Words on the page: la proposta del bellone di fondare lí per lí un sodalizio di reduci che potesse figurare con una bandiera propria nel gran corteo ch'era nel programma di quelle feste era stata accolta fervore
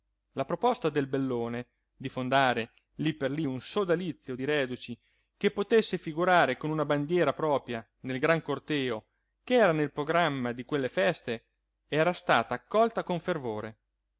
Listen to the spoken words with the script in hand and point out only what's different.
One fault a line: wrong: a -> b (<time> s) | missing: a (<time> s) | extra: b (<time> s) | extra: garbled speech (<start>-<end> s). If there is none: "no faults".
extra: con (13.0 s)